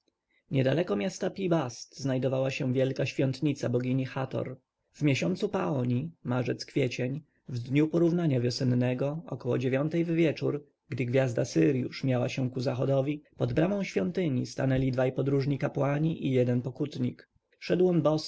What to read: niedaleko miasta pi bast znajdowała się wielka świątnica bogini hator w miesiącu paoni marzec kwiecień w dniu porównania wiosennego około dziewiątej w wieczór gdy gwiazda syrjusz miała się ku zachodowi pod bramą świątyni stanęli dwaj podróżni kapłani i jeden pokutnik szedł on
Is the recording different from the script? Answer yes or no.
no